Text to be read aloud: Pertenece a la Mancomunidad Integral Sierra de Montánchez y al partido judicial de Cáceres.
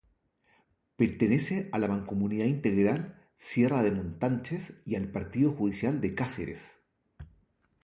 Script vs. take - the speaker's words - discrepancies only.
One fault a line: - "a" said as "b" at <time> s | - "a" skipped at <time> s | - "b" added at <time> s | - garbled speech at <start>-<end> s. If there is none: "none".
none